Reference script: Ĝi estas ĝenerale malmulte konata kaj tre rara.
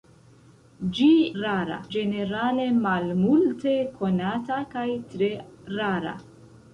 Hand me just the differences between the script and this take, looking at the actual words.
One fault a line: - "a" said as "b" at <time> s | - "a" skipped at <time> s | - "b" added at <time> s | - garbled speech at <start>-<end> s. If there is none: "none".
- "estas" said as "rara" at 1.4 s